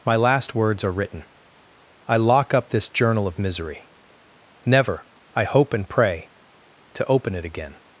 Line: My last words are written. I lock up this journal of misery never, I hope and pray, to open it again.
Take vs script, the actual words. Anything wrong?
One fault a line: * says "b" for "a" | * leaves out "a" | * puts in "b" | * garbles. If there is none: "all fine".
all fine